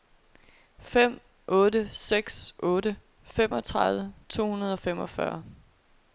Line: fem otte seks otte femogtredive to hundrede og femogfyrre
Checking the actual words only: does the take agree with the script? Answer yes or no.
yes